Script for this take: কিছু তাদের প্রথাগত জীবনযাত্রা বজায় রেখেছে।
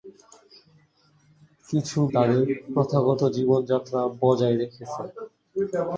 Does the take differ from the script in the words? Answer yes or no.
no